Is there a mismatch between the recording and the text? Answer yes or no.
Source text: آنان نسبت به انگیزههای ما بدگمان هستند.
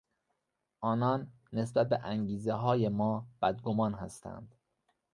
no